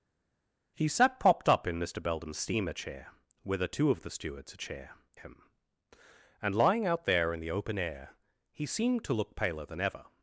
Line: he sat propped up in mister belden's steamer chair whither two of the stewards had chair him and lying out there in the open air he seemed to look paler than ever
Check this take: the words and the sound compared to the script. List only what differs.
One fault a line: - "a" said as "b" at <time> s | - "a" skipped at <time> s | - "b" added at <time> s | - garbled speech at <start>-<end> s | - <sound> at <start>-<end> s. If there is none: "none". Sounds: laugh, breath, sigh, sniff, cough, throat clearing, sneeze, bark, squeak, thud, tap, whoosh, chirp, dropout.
none